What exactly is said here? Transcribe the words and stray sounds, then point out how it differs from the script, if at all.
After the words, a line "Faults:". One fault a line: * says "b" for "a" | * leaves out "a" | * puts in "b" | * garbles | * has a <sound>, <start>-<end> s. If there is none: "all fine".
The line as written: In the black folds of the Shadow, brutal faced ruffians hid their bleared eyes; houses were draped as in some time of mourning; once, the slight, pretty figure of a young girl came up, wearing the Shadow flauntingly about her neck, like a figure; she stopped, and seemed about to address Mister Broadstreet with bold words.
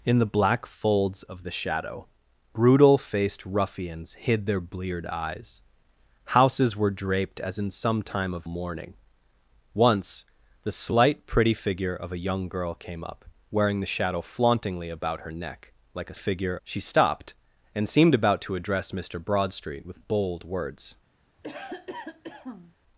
In the black folds of the Shadow, brutal faced ruffians hid their bleared eyes; houses were draped as in some time of mourning; once, the slight, pretty figure of a young girl came up, wearing the Shadow flauntingly about her neck, like a figure; she stopped, and seemed about to address Mister Broadstreet with bold words.
Faults:
* has a cough, 21.4-22.7 s